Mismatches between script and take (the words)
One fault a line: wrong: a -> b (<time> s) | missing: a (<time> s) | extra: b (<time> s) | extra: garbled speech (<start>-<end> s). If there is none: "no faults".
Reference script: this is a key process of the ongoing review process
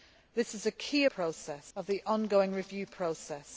no faults